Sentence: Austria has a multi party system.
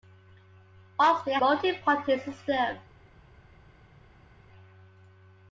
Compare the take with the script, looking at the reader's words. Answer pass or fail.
fail